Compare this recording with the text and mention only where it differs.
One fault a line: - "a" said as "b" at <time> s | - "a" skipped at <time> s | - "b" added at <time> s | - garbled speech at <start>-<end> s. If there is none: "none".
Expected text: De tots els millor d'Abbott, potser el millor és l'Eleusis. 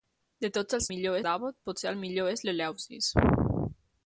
none